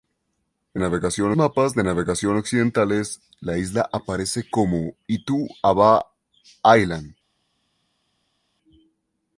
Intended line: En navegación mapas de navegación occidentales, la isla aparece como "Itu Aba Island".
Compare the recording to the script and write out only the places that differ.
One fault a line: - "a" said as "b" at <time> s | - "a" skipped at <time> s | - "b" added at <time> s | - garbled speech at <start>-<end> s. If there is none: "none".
none